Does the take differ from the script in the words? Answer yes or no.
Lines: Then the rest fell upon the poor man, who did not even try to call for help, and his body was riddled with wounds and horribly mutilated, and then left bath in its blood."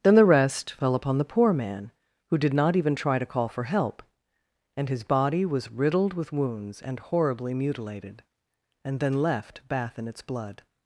no